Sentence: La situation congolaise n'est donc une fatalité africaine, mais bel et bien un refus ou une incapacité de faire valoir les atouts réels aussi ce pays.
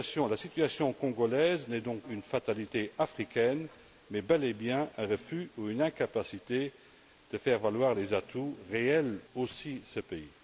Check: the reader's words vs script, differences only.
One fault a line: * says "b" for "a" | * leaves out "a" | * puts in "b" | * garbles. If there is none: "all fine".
all fine